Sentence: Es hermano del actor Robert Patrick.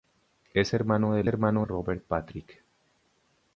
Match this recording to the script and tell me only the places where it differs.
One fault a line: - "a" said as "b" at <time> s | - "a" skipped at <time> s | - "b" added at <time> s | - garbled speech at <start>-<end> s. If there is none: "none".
- "actor" said as "hermano" at 1.3 s